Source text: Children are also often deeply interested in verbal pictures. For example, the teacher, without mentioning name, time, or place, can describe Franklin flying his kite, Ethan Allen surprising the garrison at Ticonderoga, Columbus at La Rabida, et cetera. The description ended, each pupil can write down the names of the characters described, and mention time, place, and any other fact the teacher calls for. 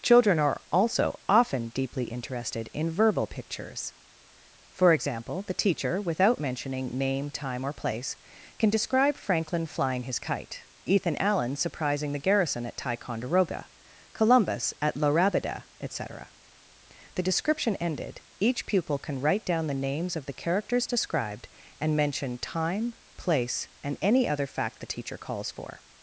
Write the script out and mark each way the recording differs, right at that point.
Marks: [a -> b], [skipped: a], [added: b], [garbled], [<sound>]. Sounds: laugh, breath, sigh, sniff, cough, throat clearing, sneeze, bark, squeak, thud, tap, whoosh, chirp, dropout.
Children are also often deeply interested in verbal pictures. For example, the teacher, without mentioning name, time, or place, can describe Franklin flying his kite, Ethan Allen surprising the garrison at Ticonderoga, Columbus at La Rabida, et cetera. The description ended, each pupil can write down the names of the characters described, and mention time, place, and any other fact the teacher calls for.